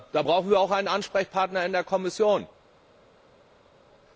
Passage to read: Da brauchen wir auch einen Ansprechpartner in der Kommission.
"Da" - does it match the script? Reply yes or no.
yes